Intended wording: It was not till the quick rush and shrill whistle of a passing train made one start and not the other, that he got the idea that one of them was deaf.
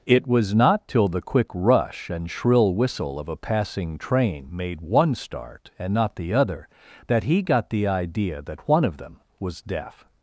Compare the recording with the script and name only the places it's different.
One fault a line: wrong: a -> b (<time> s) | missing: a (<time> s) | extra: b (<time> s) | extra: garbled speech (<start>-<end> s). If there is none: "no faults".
no faults